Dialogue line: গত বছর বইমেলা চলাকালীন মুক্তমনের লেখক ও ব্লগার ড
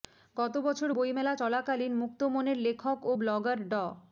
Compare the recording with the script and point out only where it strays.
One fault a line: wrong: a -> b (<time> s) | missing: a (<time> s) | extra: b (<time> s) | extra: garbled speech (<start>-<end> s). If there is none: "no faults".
no faults